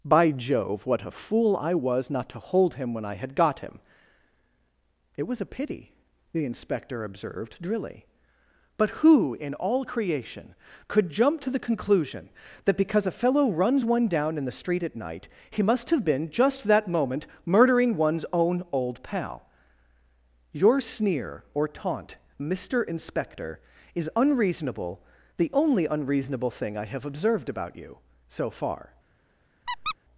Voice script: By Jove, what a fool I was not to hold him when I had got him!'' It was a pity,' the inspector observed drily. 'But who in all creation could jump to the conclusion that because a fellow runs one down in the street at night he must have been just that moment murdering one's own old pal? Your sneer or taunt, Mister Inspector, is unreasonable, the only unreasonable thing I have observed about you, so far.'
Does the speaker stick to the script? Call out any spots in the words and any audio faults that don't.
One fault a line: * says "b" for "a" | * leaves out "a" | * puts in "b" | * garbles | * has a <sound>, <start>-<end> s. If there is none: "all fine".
* has a squeak, 29.7-29.9 s